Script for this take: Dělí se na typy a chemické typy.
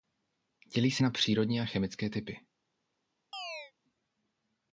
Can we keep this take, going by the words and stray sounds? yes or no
no